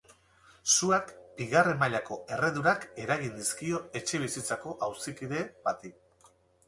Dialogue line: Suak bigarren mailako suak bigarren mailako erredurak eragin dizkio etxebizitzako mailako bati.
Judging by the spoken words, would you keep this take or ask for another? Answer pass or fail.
fail